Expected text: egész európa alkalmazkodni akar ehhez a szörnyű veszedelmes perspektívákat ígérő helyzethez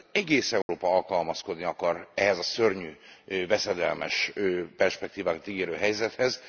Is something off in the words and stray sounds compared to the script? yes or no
yes